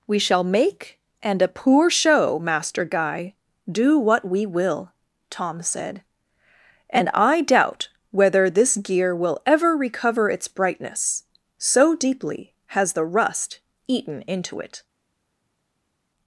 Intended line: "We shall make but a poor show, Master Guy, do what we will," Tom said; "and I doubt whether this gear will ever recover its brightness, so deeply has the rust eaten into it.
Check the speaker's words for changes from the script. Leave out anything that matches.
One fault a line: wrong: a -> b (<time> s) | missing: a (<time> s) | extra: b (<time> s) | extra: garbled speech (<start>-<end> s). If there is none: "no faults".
wrong: but -> and (1.2 s)